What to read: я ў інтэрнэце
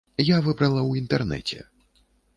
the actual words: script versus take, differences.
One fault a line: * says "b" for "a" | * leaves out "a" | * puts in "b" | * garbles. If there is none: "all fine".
* puts in "выбрала"